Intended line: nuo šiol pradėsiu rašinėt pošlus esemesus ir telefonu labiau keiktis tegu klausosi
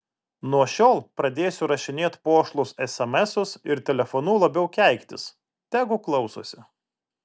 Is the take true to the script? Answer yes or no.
yes